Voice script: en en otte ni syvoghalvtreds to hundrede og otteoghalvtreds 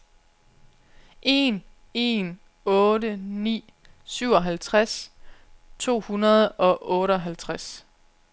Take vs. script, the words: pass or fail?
pass